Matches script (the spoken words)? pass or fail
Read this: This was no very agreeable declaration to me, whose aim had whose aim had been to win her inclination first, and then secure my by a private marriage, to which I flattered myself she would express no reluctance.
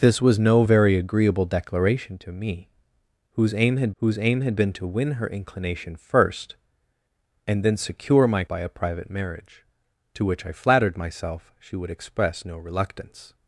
pass